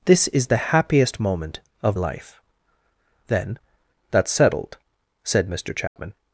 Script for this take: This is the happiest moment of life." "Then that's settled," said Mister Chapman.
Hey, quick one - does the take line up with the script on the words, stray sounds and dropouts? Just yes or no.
no